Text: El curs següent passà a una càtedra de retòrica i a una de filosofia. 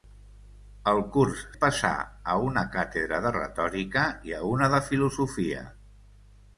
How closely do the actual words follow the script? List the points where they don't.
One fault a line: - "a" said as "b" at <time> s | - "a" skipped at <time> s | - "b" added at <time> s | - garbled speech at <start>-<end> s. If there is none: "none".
- "següent" skipped at 1.4 s